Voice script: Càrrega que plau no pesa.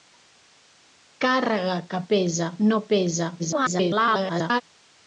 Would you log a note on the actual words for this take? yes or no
yes